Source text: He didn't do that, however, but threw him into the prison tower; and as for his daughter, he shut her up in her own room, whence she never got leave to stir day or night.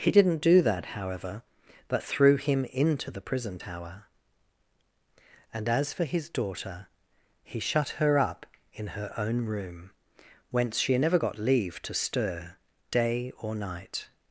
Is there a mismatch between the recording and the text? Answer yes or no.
no